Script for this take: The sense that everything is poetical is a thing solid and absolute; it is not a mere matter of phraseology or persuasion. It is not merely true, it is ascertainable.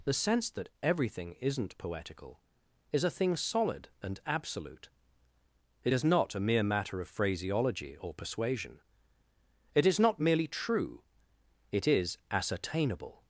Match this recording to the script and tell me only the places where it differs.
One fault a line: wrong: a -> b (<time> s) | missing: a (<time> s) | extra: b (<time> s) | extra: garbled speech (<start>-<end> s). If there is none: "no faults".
wrong: is -> isn't (1.4 s)